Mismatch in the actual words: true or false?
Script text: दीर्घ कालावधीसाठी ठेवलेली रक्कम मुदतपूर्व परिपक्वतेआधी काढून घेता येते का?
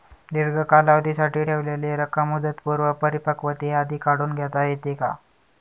false